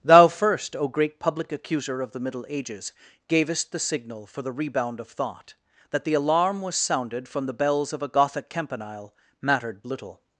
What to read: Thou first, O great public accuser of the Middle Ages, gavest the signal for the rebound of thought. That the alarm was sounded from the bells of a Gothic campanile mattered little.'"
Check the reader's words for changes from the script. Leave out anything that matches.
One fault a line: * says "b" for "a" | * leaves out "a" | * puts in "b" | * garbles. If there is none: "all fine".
all fine